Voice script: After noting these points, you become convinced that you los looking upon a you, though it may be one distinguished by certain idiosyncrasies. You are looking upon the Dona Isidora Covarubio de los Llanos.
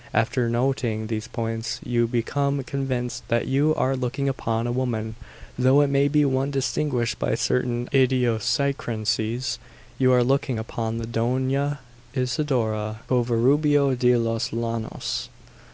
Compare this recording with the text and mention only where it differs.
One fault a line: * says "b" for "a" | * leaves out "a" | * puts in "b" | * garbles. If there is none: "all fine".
* says "are" for "los"
* says "woman" for "you"